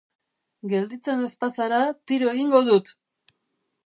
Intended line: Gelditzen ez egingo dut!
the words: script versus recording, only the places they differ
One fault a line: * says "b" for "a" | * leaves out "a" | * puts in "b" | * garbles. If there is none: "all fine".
* puts in "bazara tiro"